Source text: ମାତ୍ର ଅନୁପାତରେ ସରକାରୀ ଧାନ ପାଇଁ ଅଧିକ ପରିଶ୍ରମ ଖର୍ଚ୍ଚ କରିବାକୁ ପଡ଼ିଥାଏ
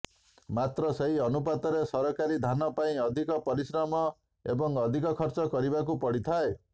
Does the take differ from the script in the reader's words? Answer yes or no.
yes